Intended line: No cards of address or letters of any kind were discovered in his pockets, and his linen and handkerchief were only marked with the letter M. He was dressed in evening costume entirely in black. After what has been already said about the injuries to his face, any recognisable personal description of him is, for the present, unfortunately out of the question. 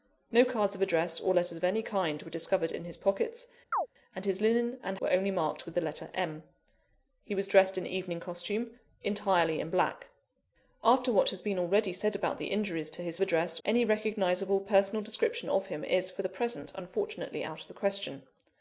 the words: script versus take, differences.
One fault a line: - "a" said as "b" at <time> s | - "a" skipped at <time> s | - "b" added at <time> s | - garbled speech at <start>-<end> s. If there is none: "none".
- "handkerchief" skipped at 5.0 s
- "face" said as "address" at 13.2 s